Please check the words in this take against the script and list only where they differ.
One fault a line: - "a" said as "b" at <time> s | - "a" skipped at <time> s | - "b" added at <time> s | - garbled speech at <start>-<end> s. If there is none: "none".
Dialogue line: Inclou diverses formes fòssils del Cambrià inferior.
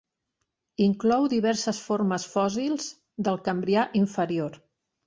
none